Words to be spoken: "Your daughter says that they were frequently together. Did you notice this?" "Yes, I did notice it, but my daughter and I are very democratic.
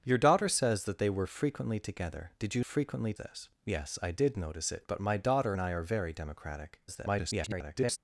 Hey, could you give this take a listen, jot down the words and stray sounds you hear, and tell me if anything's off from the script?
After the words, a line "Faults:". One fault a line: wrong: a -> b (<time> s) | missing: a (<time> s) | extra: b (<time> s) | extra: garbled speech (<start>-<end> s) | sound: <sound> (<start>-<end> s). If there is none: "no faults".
"Your daughter says that they were frequently together. Did you frequently this?" "Yes, I did notice it, but my daughter and I are very democratic. [garbled]
Faults:
wrong: notice -> frequently (2.6 s)
extra: garbled speech (6.9-8.0 s)